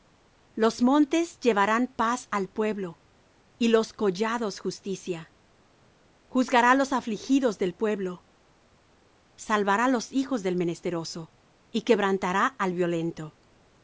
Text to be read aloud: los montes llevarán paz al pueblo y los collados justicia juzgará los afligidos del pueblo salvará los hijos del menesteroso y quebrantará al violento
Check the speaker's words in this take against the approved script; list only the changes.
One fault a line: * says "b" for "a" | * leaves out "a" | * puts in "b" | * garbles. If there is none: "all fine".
all fine